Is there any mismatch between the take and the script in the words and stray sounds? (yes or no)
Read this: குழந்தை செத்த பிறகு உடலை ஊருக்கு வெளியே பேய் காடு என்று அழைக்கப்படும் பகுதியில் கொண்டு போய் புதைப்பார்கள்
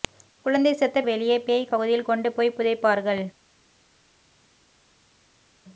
yes